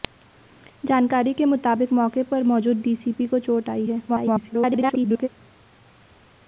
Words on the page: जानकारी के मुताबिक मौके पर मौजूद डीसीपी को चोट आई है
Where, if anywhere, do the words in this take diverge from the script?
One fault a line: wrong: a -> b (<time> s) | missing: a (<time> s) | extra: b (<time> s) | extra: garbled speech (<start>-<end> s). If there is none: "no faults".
extra: garbled speech (4.1-5.3 s)